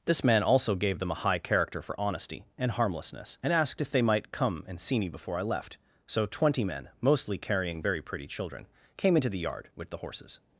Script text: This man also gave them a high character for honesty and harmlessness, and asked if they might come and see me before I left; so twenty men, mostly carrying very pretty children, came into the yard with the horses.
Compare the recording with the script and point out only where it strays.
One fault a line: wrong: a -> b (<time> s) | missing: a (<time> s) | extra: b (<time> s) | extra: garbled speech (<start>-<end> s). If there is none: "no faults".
no faults